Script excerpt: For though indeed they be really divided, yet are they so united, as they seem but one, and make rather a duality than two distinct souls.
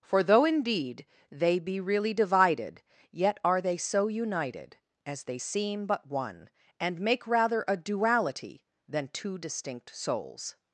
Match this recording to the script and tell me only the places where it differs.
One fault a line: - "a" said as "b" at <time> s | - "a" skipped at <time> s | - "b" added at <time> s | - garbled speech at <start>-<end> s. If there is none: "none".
none